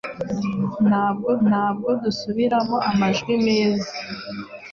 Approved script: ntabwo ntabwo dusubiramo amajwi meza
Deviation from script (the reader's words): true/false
false